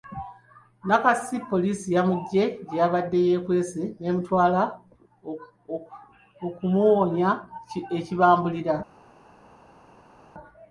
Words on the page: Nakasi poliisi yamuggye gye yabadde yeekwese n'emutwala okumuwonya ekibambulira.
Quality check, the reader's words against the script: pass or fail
pass